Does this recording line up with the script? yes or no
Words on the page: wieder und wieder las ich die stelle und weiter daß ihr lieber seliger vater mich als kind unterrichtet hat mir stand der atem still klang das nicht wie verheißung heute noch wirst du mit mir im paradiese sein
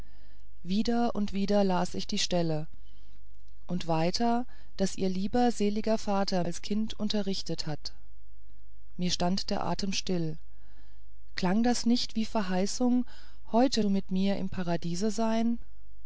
no